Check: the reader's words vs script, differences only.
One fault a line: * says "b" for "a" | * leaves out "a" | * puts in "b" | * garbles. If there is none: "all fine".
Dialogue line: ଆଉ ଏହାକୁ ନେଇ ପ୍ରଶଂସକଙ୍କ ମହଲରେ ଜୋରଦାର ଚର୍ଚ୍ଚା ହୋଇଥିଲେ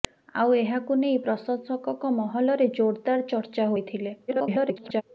* garbles